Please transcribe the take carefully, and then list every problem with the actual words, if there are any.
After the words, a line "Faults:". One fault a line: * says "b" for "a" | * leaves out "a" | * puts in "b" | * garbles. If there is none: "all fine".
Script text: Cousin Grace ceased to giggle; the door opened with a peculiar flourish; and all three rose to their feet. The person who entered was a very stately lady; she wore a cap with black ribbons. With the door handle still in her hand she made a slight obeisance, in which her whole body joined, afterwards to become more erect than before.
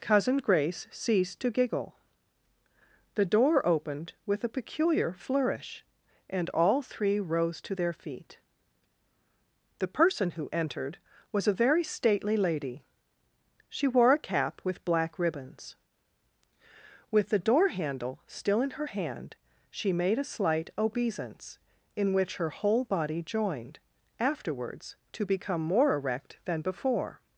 Cousin Grace ceased to giggle; the door opened with a peculiar flourish; and all three rose to their feet. The person who entered was a very stately lady; she wore a cap with black ribbons. With the door handle still in her hand she made a slight obeisance, in which her whole body joined, afterwards to become more erect than before.
Faults:
all fine